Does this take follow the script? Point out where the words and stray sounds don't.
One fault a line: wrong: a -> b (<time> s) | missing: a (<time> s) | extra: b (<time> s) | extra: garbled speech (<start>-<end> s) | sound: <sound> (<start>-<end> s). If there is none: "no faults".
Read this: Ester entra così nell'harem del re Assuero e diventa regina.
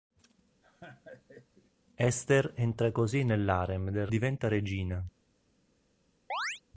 sound: laugh (0.6-1.7 s)
missing: re Assuero e (4.1 s)
sound: chirp (6.3-6.6 s)